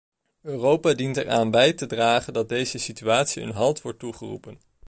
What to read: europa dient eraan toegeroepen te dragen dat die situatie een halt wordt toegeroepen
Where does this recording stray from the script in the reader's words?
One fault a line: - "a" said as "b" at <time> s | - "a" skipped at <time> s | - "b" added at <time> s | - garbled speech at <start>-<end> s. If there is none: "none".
- "toegeroepen" said as "bij" at 1.5 s
- "die" said as "deze" at 2.5 s